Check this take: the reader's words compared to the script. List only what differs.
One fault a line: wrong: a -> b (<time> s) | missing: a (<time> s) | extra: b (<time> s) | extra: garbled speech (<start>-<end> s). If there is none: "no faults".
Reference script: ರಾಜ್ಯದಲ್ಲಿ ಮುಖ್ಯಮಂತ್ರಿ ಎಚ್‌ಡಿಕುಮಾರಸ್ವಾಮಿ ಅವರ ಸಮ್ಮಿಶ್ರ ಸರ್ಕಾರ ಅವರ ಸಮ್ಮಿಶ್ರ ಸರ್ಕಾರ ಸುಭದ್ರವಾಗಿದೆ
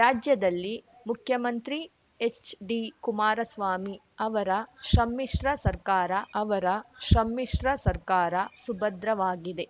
no faults